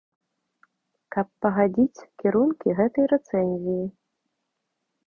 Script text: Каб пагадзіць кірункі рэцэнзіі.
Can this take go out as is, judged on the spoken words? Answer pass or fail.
fail